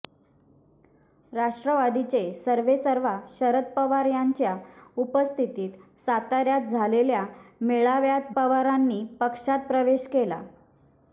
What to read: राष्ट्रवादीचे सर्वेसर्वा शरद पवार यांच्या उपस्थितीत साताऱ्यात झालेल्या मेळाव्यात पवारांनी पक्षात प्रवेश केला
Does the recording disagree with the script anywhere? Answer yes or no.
no